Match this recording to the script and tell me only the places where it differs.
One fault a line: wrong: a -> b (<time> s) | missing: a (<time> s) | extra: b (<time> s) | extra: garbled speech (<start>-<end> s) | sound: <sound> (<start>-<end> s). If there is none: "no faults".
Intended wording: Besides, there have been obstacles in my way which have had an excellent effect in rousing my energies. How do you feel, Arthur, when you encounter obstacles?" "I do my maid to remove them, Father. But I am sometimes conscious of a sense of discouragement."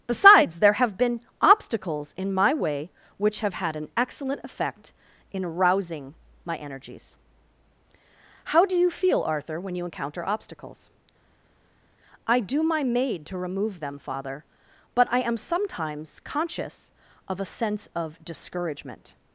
no faults